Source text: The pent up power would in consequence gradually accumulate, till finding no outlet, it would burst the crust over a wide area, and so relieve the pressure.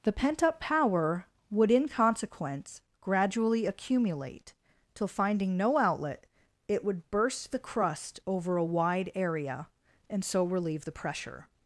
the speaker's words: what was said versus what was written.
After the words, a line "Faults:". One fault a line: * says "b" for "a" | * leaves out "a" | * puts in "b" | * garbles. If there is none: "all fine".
The pent up power would in consequence gradually accumulate, till finding no outlet, it would burst the crust over a wide area, and so relieve the pressure.
Faults:
all fine